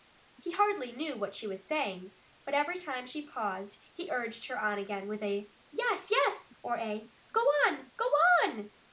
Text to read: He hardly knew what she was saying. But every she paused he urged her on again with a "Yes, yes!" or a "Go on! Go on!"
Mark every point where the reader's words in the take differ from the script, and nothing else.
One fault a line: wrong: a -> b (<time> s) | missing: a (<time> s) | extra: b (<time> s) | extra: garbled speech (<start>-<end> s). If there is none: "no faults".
extra: time (2.8 s)